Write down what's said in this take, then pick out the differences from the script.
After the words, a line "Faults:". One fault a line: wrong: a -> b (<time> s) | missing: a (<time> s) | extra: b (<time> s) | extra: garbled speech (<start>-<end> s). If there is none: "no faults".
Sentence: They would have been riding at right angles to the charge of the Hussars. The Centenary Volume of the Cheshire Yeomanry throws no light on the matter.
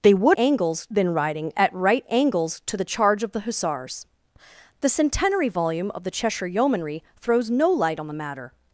They would angles been riding at right angles to the charge of the Hussars. The Centenary Volume of the Cheshire Yeomanry throws no light on the matter.
Faults:
wrong: have -> angles (0.4 s)